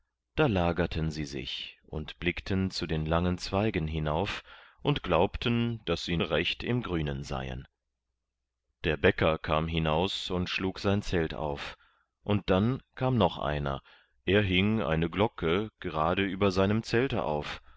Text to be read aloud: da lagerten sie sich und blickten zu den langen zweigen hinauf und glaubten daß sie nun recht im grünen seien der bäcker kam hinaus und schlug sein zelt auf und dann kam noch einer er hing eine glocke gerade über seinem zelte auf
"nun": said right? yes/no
no